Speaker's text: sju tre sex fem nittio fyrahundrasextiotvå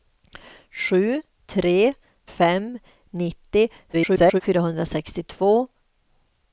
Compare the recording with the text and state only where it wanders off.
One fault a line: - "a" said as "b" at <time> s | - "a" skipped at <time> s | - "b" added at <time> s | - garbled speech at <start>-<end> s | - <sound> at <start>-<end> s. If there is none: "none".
- "sex" skipped at 1.9 s
- garbled speech at 3.9-4.4 s